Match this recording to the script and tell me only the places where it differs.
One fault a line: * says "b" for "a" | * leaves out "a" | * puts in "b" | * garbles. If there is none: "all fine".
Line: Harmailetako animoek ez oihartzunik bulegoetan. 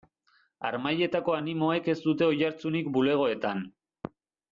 * puts in "dute"